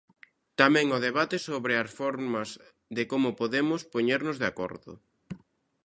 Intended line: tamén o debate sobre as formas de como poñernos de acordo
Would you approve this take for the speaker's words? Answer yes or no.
no